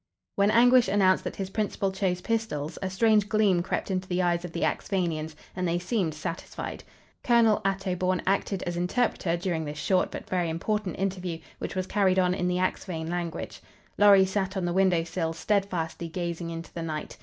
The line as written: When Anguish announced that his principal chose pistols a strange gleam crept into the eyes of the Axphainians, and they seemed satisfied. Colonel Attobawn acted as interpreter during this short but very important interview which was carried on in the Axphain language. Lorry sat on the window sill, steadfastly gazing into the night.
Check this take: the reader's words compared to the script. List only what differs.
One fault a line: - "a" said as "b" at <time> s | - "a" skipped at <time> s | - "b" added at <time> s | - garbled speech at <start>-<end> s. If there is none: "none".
none